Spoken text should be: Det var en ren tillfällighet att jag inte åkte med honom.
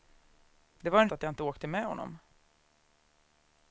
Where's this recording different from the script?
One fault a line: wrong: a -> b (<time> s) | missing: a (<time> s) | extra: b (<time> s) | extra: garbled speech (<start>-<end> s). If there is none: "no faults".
missing: ren tillfällighet (1.1 s)